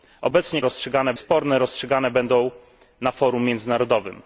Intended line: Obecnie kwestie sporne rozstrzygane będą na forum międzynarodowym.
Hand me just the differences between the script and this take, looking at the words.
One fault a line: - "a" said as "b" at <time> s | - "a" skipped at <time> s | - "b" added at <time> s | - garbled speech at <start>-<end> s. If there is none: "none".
- "kwestie" said as "rozstrzygane" at 0.6 s